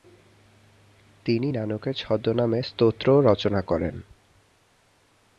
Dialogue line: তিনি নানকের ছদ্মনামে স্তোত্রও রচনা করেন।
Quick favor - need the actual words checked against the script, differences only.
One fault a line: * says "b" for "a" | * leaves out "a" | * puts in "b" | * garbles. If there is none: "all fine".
all fine